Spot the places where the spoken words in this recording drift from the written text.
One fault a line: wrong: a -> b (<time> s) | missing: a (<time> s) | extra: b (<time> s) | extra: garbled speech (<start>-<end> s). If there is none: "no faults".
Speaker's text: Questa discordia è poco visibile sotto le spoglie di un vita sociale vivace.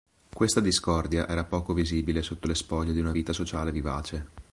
wrong: è -> era (1.3 s)
wrong: un -> una (3.0 s)